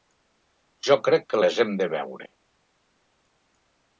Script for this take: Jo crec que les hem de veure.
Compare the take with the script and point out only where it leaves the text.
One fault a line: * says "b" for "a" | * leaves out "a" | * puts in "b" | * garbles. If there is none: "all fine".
all fine